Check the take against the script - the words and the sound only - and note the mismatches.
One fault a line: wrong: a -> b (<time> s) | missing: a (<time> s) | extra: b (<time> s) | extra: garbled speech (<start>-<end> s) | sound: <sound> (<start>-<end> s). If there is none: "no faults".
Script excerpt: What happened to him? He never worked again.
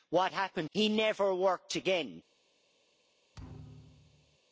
missing: to him (0.7 s)
sound: thud (3.3-4.4 s)